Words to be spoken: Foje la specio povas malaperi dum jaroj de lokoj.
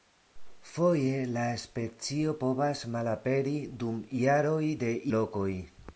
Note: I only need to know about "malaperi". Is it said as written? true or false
true